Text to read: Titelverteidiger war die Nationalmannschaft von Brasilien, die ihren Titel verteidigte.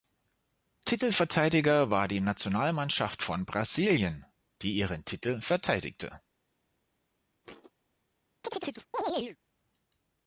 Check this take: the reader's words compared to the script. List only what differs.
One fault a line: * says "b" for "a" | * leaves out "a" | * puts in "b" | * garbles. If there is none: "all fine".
all fine